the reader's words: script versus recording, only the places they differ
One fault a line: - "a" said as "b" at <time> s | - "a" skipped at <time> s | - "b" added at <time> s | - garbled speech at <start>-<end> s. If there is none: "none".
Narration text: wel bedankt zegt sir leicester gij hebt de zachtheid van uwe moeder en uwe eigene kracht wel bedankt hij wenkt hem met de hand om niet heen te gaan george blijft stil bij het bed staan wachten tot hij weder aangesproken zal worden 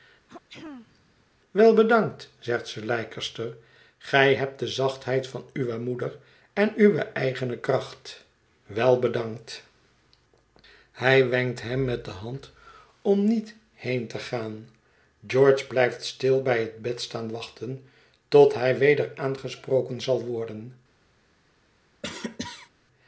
none